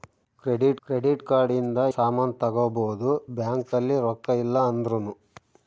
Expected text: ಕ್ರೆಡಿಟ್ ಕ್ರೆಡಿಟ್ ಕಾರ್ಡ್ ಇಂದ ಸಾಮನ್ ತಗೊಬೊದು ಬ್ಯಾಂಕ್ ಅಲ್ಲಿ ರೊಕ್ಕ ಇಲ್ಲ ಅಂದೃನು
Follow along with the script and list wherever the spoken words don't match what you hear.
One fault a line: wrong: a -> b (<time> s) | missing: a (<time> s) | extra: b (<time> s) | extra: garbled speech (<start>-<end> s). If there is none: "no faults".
no faults